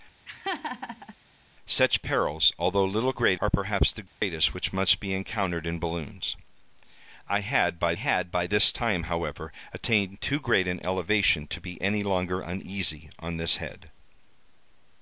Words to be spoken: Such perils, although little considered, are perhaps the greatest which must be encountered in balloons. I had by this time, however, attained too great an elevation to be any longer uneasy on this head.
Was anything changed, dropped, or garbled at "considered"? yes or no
yes